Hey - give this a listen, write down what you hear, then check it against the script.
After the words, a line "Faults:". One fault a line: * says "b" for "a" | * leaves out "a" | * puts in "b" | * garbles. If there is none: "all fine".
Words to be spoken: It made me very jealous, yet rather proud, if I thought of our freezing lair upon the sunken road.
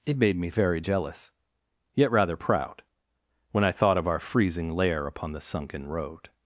It made me very jealous, yet rather proud, when I thought of our freezing lair upon the sunken road.
Faults:
* says "when" for "if"